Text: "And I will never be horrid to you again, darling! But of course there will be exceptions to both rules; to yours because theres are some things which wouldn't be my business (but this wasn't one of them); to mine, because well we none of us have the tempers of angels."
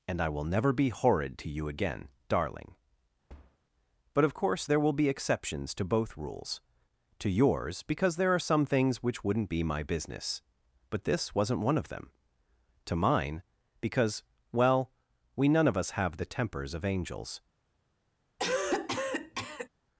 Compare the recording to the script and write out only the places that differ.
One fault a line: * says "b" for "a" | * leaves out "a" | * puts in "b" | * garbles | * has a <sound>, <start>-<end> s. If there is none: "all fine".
* has a thud, 3.3-3.6 s
* says "there" for "theres"
* has a cough, 18.4-19.7 s